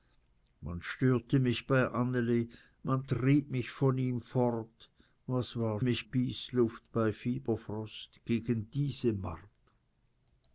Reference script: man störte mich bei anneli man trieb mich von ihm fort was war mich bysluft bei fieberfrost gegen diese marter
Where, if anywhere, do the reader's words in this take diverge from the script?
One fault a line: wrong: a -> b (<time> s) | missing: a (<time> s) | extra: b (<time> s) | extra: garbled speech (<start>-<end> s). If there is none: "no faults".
no faults